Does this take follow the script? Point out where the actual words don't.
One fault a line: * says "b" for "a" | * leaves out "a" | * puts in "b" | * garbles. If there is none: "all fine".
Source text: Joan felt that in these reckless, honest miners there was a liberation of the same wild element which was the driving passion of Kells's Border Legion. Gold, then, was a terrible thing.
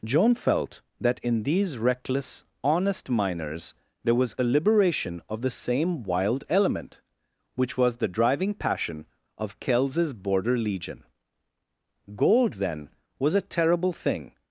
all fine